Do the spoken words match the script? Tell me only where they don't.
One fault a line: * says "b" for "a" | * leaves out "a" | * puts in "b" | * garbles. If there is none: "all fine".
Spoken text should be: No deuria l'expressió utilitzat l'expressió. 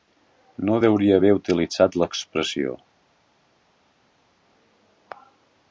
* says "haver" for "l'expressió"